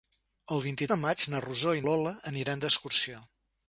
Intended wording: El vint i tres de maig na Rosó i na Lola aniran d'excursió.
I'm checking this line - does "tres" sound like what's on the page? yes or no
no